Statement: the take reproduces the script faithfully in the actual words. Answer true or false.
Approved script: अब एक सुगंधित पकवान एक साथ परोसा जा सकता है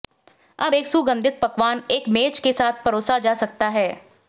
false